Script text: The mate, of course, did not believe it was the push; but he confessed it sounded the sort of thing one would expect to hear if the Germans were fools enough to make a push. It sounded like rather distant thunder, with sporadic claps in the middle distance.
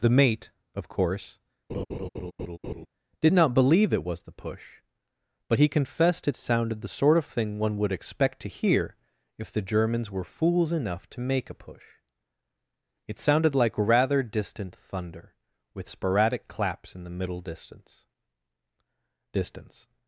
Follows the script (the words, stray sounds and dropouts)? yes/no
no